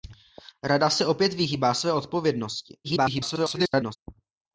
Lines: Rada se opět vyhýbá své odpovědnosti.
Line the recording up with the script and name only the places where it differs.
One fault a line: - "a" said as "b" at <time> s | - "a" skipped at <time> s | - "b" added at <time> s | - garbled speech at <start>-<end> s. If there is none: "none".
- garbled speech at 2.8-4.0 s